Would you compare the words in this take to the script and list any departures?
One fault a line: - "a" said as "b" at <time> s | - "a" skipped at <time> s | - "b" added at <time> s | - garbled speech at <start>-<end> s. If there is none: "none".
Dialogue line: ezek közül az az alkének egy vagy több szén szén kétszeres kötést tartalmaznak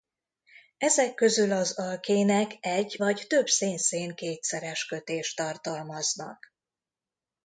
- "az" skipped at 1.8 s